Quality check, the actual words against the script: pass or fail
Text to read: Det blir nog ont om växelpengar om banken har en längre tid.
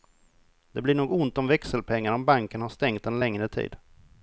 fail